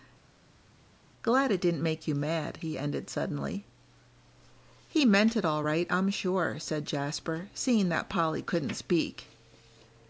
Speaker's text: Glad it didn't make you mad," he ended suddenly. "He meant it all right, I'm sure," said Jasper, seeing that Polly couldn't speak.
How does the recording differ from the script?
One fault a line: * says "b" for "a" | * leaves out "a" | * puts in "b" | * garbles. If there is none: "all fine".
all fine